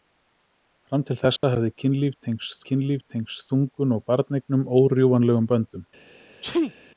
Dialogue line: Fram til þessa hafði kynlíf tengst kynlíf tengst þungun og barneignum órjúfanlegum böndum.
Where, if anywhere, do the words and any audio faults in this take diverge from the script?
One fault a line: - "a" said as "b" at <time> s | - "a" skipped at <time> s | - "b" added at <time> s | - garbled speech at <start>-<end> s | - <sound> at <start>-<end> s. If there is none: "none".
- dropout at 1.4-1.4 s
- sneeze at 6.4-6.7 s